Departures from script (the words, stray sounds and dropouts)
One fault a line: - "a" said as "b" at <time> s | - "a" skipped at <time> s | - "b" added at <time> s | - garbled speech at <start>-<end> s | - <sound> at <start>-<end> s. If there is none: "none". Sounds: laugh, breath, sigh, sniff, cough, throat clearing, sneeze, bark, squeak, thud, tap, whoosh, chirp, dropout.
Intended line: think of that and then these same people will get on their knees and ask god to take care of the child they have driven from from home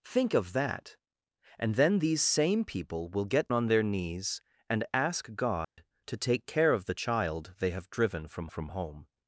- dropout at 5.6-5.8 s